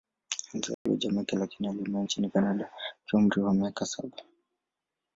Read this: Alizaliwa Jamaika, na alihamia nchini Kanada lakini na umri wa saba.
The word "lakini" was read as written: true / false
false